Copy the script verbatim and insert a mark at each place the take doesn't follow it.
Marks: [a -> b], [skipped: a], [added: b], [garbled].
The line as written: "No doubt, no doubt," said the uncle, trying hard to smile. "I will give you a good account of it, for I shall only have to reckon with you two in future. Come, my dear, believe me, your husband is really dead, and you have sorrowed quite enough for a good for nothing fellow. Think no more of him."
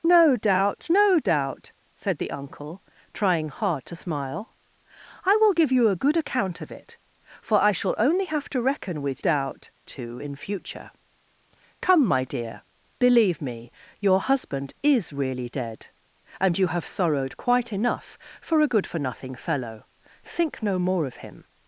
"No doubt, no doubt," said the uncle, trying hard to smile. "I will give you a good account of it, for I shall only have to reckon with [you -> doubt] two in future. Come, my dear, believe me, your husband is really dead, and you have sorrowed quite enough for a good for nothing fellow. Think no more of him."